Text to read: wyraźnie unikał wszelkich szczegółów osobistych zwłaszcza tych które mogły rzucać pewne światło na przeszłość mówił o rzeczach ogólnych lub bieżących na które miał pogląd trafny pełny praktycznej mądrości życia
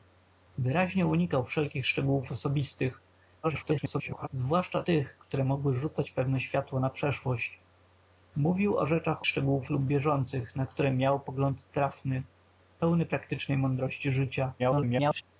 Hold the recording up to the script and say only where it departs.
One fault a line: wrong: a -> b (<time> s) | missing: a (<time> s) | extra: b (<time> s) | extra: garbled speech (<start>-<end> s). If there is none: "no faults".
extra: garbled speech (3.4-4.3 s)
wrong: ogólnych -> szczegółów (9.3 s)
extra: garbled speech (14.6-15.2 s)